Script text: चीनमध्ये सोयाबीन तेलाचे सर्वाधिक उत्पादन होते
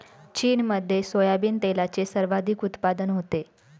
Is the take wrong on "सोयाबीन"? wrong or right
right